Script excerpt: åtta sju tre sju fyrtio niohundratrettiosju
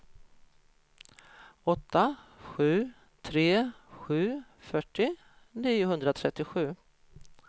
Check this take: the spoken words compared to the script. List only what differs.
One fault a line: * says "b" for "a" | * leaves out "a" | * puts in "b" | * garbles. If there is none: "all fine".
all fine